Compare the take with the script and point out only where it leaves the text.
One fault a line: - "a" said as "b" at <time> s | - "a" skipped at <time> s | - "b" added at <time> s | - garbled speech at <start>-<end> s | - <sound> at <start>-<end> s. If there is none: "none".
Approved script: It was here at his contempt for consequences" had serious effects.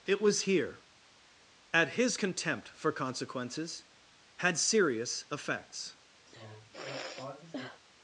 - sigh at 6.3-7.8 s